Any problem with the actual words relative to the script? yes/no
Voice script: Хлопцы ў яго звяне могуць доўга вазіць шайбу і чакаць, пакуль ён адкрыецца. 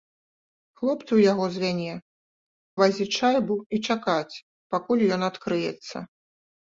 yes